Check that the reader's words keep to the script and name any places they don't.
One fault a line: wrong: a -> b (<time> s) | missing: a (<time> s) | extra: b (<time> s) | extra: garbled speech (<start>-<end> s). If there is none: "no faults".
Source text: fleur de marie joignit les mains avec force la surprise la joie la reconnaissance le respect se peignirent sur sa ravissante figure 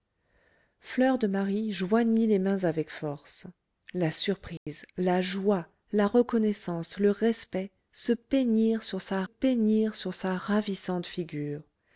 extra: peignirent sur sa (9.2 s)